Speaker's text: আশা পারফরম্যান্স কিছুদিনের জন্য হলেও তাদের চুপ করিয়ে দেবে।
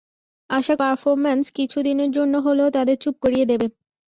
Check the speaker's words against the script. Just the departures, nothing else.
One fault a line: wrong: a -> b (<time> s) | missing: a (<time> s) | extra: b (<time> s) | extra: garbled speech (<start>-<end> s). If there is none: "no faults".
no faults